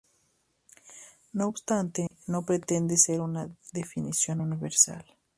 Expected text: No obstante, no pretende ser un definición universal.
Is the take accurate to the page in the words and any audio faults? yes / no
no